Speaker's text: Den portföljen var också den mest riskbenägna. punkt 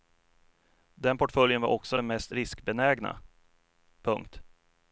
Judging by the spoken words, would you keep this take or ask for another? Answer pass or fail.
pass